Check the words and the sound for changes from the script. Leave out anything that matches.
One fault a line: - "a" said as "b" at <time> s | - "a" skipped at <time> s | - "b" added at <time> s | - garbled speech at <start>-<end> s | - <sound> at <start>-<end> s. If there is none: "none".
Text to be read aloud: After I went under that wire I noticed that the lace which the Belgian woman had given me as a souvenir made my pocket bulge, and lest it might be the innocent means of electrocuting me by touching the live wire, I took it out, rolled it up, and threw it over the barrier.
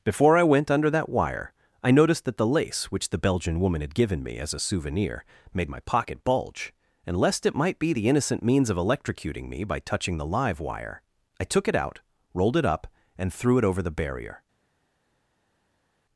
- "After" said as "Before" at 0.0 s